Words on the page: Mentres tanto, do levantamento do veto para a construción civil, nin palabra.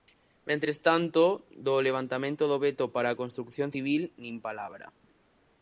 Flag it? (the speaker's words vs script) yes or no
no